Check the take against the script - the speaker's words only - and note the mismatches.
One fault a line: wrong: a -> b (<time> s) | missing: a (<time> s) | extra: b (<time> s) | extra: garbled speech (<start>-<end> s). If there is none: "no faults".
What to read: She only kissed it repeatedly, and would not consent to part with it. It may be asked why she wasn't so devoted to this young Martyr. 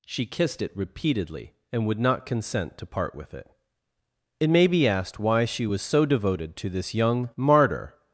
missing: only (0.3 s)
wrong: wasn't -> was (5.7 s)